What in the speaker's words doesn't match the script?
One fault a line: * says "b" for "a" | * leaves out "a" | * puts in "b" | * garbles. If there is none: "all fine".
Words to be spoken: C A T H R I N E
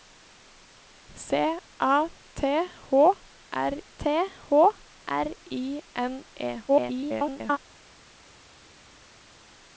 * puts in "T H R"
* garbles